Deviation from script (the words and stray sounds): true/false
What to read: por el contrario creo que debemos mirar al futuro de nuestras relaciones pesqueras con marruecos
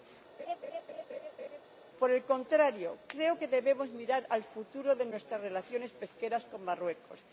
true